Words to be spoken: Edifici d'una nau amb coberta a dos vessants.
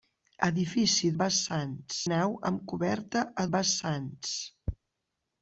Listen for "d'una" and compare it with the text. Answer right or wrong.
wrong